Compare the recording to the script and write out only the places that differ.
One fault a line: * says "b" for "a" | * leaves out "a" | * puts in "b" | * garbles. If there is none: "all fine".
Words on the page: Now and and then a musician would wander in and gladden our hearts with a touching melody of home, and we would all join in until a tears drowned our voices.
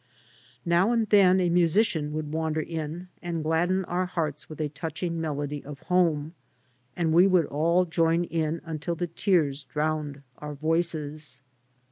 * leaves out "and"
* says "the" for "a"